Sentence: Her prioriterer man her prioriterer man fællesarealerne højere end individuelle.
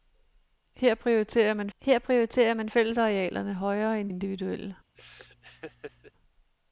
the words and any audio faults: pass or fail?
fail